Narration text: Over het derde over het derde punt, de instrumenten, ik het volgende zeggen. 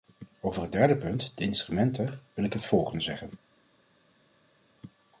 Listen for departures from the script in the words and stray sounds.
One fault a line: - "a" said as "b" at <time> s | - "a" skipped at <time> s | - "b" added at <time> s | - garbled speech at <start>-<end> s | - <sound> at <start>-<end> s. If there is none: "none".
- "over het derde" skipped at 1.0 s
- "wil" added at 2.3 s